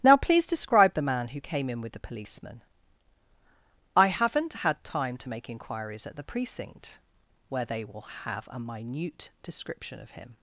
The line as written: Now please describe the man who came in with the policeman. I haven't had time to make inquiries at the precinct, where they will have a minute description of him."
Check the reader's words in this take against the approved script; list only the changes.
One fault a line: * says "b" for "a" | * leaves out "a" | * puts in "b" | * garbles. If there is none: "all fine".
all fine